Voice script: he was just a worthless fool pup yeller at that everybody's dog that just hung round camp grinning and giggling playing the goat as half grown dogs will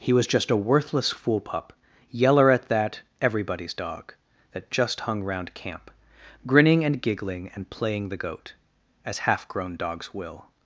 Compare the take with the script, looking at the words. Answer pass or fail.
fail